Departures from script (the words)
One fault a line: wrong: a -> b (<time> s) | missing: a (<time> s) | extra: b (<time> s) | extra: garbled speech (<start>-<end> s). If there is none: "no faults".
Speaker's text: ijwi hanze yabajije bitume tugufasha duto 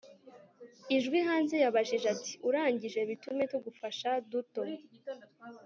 extra: ati urangije (2.1 s)